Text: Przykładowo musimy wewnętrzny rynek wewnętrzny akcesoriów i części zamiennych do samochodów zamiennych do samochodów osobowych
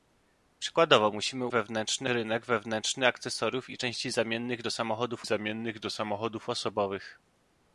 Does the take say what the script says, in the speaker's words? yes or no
yes